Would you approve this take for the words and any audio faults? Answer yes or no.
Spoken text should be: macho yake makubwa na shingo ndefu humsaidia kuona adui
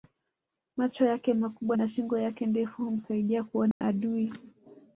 no